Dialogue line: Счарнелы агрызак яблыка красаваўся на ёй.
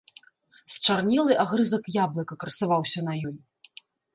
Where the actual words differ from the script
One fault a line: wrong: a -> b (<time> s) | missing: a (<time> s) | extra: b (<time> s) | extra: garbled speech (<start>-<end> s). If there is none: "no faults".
no faults